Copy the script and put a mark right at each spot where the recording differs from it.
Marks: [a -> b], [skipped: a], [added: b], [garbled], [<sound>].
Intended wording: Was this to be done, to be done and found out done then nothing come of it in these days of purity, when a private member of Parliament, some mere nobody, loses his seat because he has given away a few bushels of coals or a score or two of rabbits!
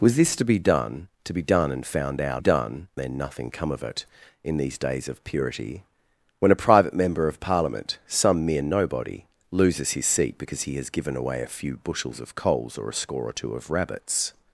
Was this to be done, to be done and found out done then nothing come of it in these days of purity, when a private member of Parliament, some mere nobody, loses his seat because he has given away a few bushels of coals or a score or two of rabbits!